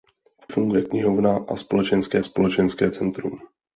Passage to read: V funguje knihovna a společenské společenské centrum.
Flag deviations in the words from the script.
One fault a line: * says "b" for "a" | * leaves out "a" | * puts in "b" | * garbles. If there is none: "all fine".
all fine